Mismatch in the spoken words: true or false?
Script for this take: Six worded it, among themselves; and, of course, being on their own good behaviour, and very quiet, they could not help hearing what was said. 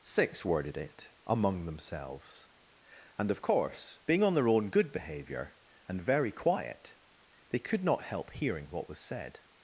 false